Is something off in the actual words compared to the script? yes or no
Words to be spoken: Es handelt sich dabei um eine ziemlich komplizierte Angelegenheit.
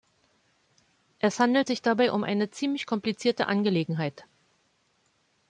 no